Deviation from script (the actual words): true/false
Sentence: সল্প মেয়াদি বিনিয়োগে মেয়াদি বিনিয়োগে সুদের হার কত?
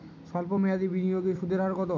true